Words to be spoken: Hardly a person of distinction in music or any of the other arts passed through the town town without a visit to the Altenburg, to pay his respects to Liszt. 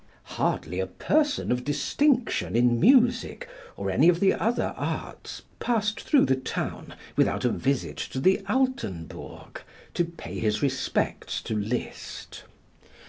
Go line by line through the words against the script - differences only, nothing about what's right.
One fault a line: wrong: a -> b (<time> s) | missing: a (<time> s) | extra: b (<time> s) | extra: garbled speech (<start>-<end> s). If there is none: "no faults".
missing: town (7.0 s)